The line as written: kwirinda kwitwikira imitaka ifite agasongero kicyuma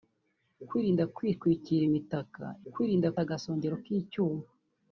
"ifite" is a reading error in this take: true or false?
true